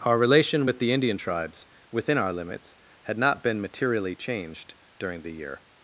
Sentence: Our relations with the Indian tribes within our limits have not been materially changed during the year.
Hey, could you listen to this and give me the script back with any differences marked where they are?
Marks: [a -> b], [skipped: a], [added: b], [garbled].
Our [relations -> relation] with the Indian tribes within our limits [have -> had] not been materially changed during the year.